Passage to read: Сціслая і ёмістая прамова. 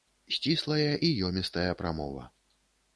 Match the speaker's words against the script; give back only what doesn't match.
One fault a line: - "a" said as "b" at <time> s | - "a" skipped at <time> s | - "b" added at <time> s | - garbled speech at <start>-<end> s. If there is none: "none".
none